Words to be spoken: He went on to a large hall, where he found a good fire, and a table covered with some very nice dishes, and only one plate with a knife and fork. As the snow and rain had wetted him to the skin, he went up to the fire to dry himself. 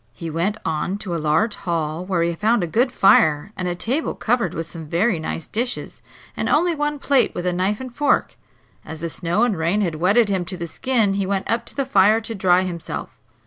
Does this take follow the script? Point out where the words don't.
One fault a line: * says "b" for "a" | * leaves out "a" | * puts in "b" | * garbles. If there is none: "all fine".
all fine